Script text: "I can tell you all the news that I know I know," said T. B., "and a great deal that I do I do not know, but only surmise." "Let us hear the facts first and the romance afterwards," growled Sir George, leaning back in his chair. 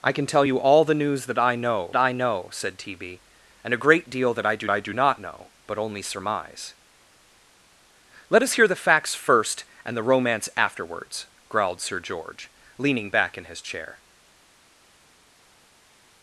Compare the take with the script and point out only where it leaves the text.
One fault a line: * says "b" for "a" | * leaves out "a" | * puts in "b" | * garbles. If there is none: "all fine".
all fine